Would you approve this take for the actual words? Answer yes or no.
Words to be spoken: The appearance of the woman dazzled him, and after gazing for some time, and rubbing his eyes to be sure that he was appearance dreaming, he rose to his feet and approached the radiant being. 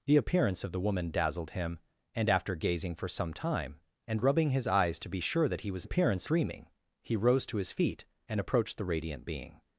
yes